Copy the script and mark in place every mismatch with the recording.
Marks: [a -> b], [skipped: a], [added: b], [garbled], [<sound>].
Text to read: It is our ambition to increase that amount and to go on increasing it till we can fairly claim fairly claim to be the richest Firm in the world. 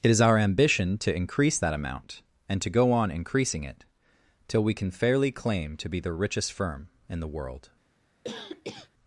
It is our ambition to increase that amount and to go on increasing it till we can fairly claim [skipped: fairly claim] to be the richest Firm in the world. [cough]